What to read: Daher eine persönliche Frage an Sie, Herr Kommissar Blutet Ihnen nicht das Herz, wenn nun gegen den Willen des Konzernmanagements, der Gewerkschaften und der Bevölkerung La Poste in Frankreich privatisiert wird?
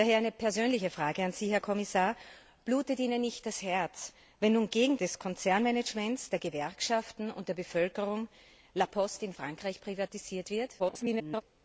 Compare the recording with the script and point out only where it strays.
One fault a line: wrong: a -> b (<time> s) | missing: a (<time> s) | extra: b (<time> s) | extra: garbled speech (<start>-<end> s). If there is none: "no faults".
missing: den Willen (5.0 s)
extra: garbled speech (10.8-11.4 s)